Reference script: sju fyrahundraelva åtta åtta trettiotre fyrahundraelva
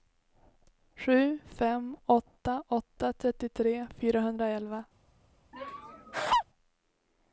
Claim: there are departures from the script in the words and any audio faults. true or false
true